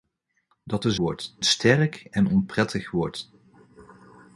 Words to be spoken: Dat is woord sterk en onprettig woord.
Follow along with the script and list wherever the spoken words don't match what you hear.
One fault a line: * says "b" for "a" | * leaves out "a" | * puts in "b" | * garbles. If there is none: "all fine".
all fine